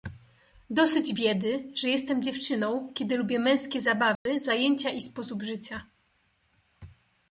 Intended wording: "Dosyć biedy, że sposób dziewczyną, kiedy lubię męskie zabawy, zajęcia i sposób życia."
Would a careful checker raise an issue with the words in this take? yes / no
yes